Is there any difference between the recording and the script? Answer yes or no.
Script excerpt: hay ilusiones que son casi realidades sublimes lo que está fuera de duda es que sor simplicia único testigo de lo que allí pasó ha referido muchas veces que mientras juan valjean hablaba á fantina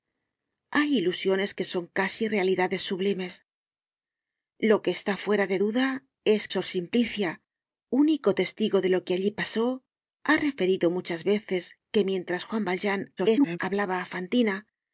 yes